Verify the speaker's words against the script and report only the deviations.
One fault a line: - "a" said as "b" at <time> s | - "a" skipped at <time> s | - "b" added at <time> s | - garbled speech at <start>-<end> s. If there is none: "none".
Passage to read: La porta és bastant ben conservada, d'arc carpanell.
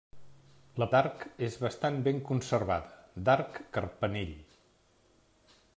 - "porta" said as "d'arc" at 0.9 s